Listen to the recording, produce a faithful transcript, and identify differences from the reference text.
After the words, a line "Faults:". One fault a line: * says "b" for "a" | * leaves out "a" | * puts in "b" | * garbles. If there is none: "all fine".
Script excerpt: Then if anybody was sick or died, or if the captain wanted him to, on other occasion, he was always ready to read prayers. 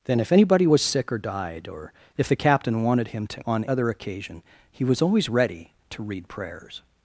Then if anybody was sick or died, or if the captain wanted him to, on other occasion, he was always ready to read prayers.
Faults:
all fine